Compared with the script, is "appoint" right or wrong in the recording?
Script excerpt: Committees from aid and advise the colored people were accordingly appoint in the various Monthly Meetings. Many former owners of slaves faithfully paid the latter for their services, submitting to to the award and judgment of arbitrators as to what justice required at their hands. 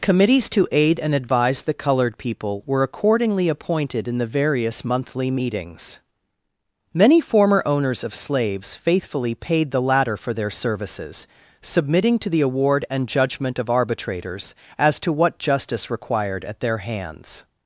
wrong